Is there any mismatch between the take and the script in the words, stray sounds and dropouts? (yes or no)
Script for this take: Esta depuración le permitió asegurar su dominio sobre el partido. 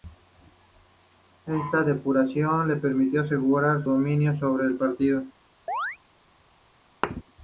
yes